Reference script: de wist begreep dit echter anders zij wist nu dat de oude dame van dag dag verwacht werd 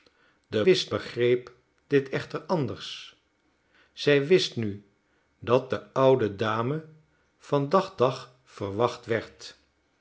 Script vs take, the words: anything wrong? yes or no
no